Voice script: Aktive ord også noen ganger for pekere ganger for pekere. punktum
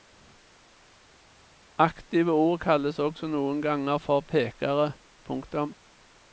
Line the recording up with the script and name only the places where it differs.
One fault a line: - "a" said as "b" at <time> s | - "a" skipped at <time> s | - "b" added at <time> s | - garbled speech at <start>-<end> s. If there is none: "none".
- "kalles" added at 2.6 s
- "ganger for pekere" skipped at 4.9 s